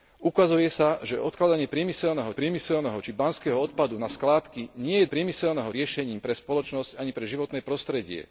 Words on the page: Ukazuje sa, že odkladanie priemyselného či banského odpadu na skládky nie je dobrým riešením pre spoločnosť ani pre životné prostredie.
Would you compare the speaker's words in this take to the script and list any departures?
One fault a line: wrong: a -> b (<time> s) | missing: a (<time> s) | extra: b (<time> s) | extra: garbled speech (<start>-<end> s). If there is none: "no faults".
extra: priemyselného (2.3 s)
wrong: dobrým -> priemyselného (5.0 s)